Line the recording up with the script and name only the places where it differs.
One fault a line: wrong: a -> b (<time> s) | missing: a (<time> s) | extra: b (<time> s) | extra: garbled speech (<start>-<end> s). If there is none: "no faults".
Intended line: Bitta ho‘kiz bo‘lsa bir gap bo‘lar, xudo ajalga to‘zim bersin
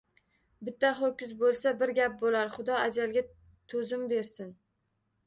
no faults